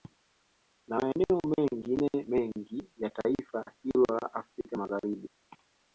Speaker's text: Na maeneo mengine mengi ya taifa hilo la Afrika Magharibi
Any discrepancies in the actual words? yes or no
no